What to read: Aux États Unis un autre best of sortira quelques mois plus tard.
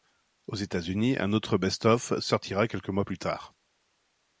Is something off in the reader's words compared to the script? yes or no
no